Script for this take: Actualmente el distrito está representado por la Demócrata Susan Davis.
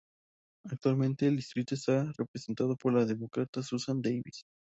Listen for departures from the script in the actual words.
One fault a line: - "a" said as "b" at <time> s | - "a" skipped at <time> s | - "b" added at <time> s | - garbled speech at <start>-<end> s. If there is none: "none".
none